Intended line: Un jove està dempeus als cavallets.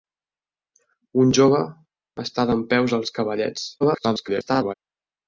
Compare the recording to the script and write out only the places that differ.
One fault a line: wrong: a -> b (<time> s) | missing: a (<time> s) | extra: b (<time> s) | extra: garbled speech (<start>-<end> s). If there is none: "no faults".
extra: garbled speech (3.8-4.7 s)